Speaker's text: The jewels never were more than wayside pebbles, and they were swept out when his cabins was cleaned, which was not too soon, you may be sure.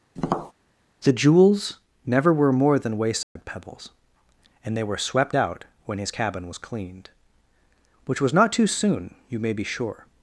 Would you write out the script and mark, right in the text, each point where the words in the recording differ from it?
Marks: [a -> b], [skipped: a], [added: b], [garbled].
The jewels never were more than wayside pebbles, and they were swept out when his [cabins -> cabin] was cleaned, which was not too soon, you may be sure.